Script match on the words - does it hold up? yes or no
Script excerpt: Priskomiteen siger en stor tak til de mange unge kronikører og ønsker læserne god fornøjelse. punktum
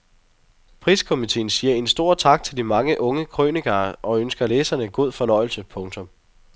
yes